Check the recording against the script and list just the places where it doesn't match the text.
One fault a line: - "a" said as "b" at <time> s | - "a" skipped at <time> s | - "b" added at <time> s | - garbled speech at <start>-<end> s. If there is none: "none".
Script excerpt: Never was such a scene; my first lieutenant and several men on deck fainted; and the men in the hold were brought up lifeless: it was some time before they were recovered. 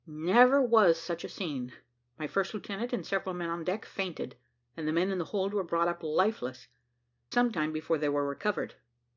- "it was" skipped at 6.7 s